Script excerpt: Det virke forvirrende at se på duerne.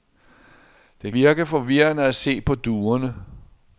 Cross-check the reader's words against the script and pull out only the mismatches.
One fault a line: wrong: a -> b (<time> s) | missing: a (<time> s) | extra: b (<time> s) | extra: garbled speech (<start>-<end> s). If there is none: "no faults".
no faults